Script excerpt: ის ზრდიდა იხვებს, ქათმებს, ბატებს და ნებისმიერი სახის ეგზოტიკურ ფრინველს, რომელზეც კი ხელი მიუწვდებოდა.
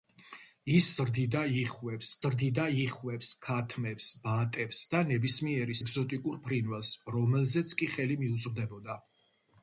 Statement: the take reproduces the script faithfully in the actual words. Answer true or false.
false